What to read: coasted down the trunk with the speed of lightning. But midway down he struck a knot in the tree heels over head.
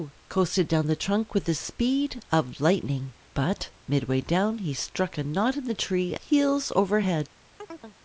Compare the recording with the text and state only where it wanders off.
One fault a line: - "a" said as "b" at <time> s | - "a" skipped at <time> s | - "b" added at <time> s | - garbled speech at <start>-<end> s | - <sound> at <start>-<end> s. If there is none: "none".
- chirp at 7.6-8.0 s